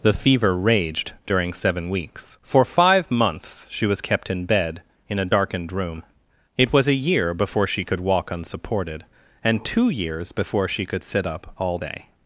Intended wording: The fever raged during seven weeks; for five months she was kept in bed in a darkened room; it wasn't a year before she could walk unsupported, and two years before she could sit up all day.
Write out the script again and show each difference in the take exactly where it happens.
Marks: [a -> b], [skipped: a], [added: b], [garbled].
The fever raged during seven weeks; for five months she was kept in bed in a darkened room; it [wasn't -> was] a year before she could walk unsupported, and two years before she could sit up all day.